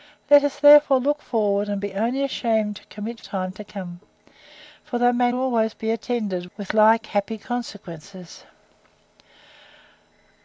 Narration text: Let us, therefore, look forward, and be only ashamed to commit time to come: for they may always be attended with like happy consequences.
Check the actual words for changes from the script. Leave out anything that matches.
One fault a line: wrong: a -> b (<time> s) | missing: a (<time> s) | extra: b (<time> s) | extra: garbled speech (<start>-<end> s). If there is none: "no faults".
no faults